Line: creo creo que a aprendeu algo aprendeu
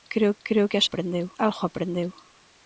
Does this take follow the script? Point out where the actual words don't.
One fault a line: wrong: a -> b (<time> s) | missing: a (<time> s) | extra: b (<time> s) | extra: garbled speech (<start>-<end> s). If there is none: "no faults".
no faults